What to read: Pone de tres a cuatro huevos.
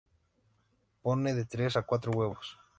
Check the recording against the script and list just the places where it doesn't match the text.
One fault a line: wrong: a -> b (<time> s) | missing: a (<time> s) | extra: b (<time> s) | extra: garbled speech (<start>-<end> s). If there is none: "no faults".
no faults